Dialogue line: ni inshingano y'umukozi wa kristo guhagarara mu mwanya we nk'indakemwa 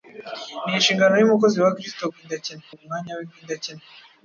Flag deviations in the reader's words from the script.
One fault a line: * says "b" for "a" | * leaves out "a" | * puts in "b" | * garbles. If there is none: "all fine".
* says "nk'indakemwa" for "guhagarara"